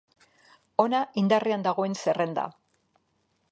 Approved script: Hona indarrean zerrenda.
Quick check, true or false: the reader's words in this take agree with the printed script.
false